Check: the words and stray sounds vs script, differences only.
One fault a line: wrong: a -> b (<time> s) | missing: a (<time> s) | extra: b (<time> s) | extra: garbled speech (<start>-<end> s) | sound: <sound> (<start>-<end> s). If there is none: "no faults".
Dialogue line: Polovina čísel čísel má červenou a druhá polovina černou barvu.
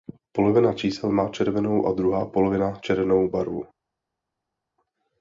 missing: čísel (1.1 s)